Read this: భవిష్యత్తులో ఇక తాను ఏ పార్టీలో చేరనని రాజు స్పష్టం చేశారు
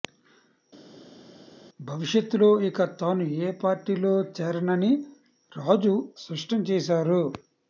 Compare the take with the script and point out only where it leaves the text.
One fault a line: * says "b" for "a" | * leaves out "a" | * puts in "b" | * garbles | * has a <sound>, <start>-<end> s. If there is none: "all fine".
all fine